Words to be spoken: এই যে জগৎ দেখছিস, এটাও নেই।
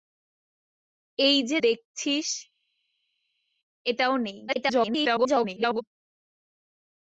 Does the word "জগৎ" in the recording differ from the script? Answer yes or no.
yes